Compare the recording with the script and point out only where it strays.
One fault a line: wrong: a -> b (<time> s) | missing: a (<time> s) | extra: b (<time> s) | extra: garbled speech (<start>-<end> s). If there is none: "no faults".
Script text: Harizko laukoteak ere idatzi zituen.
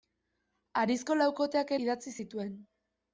missing: ere (1.8 s)